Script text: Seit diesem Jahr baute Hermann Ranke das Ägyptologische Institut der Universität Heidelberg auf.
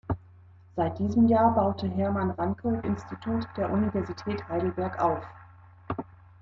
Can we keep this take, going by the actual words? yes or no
no